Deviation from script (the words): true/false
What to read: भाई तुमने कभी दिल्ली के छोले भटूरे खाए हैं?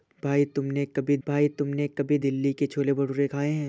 true